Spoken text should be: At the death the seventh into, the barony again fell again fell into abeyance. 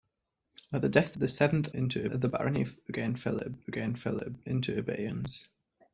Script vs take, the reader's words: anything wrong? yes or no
no